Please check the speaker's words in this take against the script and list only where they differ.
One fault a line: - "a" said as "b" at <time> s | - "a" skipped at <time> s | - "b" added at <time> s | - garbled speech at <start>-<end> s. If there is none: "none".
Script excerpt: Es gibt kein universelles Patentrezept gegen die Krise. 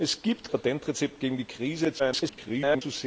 - "kein universelles" skipped at 0.5 s
- garbled speech at 2.0-2.8 s